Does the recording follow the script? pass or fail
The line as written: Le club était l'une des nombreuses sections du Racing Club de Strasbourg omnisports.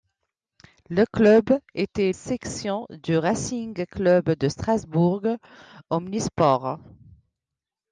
fail